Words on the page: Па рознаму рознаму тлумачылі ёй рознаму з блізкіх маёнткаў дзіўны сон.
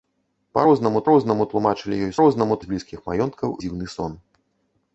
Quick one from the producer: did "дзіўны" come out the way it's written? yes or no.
yes